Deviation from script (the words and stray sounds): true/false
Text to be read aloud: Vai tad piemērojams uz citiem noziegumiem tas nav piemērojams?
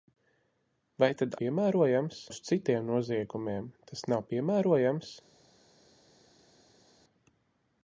false